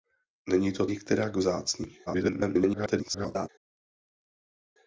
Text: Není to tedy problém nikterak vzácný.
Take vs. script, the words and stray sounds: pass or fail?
fail